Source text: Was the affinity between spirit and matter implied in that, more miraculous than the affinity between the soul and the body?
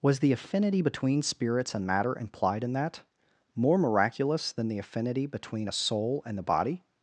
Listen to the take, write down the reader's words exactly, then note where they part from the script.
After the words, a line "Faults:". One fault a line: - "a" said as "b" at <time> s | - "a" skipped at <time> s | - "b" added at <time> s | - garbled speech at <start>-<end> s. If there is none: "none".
Was the affinity between spirits and matter implied in that, more miraculous than the affinity between a soul and the body?
Faults:
- "spirit" said as "spirits" at 1.2 s
- "the" said as "a" at 5.6 s